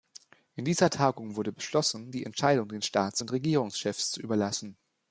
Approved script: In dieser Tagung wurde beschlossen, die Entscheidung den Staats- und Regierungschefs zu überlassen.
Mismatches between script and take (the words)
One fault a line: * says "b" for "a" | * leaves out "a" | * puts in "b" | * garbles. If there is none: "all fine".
all fine